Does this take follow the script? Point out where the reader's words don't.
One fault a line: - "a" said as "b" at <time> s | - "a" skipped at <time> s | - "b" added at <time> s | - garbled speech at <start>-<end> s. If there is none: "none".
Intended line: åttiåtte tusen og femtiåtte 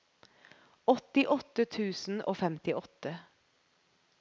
none